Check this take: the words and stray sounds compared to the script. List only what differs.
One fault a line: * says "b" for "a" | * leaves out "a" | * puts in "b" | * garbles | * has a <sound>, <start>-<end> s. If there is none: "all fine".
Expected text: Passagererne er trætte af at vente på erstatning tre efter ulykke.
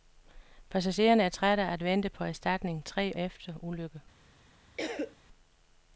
* has a cough, 4.8-5.2 s